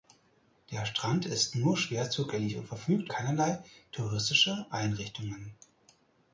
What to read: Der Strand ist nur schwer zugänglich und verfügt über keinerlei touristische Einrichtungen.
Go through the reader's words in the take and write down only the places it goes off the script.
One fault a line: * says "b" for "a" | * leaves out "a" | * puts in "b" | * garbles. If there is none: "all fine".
* leaves out "über"